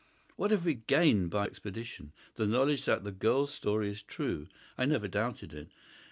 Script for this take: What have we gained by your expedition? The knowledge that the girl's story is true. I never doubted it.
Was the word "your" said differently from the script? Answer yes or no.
yes